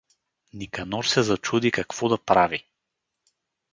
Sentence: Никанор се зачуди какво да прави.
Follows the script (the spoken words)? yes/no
yes